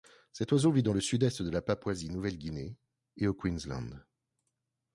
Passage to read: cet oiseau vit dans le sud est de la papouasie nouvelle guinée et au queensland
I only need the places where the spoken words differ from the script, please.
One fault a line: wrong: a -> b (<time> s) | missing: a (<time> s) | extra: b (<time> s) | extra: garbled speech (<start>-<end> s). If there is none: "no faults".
no faults